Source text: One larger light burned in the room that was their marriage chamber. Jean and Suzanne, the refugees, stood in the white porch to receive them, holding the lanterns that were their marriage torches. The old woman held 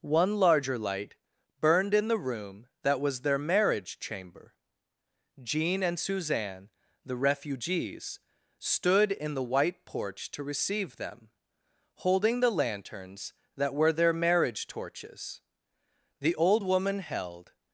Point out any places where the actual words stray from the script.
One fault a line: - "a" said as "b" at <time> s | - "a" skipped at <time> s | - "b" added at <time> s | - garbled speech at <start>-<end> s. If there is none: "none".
none